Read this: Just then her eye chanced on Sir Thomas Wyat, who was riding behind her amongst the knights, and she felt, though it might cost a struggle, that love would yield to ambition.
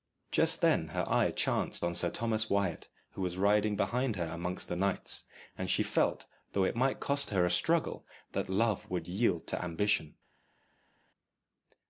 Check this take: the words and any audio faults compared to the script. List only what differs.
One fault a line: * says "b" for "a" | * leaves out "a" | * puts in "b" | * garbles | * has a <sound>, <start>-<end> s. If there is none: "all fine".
* puts in "her"